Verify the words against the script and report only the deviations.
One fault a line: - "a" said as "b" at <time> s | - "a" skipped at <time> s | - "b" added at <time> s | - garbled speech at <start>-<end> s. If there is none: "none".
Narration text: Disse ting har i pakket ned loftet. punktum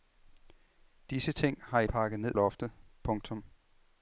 none